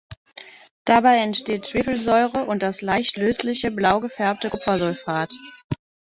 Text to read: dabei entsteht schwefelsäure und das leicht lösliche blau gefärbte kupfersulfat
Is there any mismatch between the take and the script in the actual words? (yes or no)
no